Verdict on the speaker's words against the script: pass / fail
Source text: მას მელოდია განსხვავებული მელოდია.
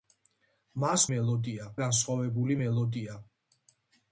pass